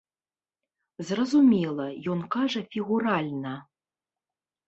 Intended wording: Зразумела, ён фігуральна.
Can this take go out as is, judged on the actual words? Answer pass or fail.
fail